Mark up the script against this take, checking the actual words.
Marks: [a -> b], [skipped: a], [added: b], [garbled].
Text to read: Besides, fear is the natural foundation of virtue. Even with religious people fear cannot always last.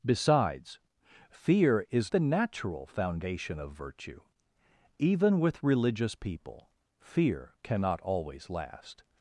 Besides, fear is the natural foundation of virtue. Even with religious people fear cannot always last.